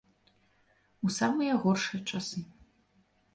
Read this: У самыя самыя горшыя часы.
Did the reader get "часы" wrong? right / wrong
right